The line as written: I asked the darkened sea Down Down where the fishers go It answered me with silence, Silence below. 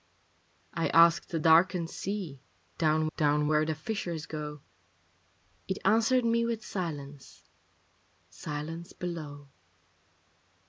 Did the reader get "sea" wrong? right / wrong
right